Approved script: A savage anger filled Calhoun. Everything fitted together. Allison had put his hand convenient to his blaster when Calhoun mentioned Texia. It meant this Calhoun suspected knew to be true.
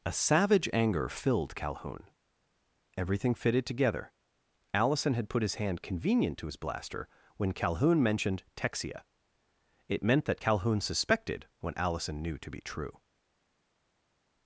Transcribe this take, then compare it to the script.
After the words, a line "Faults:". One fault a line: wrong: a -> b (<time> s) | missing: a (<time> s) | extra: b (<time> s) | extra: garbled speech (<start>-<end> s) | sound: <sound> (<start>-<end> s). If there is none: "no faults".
A savage anger filled Calhoun. Everything fitted together. Allison had put his hand convenient to his blaster when Calhoun mentioned Texia. It meant that Calhoun suspected what Allison knew to be true.
Faults:
wrong: this -> that (10.3 s)
extra: what Allison (11.6 s)